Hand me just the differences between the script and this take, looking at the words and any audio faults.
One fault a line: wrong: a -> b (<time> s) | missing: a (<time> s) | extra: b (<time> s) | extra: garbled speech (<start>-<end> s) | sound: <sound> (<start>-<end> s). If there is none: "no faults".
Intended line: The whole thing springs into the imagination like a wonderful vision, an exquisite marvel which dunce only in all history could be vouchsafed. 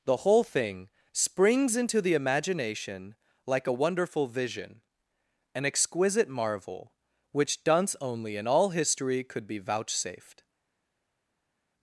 no faults